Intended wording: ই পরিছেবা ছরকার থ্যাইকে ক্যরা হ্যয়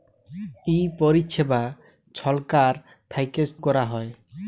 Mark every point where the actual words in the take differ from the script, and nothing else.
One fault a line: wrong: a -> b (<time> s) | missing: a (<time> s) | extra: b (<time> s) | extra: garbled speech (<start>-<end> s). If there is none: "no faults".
no faults